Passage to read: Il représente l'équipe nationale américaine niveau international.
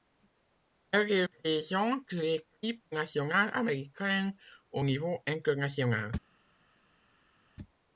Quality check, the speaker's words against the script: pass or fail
fail